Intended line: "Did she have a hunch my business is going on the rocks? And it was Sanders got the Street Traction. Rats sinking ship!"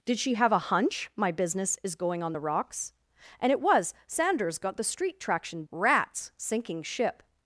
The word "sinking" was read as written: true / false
true